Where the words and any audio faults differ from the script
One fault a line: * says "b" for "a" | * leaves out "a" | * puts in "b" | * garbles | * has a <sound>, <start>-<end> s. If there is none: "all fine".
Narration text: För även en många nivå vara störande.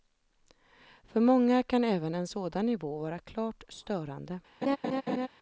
* puts in "många kan"
* says "sådan" for "många"
* puts in "klart"
* has a laugh, 4.6-5.3 s